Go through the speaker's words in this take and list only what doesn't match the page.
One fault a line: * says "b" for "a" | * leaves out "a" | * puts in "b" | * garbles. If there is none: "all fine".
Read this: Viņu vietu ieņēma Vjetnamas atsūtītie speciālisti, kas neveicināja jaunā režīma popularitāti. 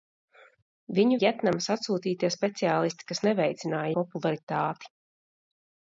* leaves out "vietu ieņēma"
* leaves out "jaunā režīma"